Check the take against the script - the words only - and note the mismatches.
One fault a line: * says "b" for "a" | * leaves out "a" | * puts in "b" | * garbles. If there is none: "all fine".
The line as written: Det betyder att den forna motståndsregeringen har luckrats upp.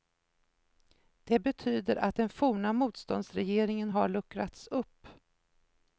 all fine